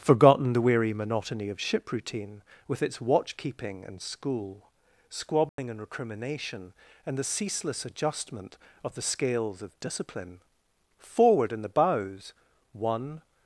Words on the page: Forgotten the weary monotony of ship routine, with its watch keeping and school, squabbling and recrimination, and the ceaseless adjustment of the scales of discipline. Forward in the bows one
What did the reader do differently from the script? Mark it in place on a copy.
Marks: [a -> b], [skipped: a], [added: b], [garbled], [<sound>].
Forgotten the weary monotony of ship routine, with its watch keeping and school, squabbling [dropout] and recrimination, and the ceaseless adjustment of the scales of discipline. Forward in the bows one